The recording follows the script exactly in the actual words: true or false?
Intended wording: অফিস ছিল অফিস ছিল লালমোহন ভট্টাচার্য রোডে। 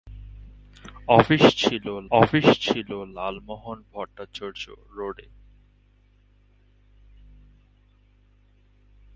true